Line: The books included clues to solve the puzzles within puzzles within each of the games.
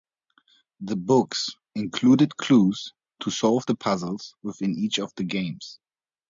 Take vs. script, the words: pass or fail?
fail